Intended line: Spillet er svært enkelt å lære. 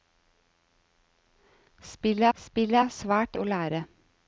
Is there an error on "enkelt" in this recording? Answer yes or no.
yes